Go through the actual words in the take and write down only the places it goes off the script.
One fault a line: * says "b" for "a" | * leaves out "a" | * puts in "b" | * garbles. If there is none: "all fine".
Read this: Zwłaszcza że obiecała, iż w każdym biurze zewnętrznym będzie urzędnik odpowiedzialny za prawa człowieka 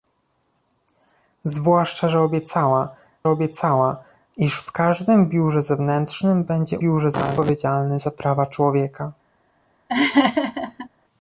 * puts in "obiecała"
* says "biurze" for "urzędnik"